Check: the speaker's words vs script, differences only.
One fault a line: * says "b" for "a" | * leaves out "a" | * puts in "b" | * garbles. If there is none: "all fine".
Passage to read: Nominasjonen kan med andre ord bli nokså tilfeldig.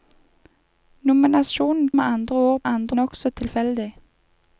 * leaves out "kan"
* says "andre" for "bli"